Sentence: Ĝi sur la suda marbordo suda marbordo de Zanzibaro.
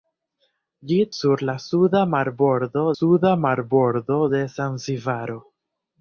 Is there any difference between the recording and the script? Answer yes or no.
no